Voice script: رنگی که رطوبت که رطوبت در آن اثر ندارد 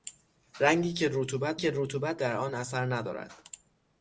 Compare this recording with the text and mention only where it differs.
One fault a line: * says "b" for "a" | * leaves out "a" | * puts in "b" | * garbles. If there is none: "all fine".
all fine